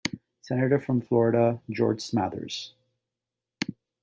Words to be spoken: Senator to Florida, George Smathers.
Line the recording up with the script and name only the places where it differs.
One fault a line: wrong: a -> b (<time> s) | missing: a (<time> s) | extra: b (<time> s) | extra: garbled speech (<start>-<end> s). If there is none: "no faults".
wrong: to -> from (0.8 s)